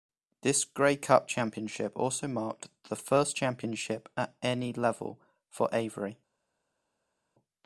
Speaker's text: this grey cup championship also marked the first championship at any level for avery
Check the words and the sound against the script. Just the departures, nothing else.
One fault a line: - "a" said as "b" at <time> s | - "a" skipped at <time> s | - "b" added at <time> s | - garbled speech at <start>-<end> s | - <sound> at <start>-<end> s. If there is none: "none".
none